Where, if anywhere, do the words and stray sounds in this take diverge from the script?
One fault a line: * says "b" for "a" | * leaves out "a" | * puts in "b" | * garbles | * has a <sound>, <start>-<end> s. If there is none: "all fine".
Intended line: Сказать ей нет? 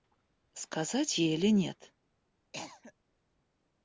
* puts in "или"
* has a cough, 2.5-2.9 s